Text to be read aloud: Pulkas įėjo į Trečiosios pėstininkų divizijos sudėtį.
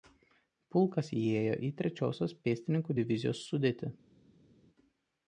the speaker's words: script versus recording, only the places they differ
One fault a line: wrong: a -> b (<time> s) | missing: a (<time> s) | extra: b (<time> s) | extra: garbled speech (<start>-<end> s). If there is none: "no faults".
no faults